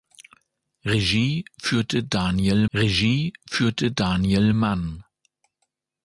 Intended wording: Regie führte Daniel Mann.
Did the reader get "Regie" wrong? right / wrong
right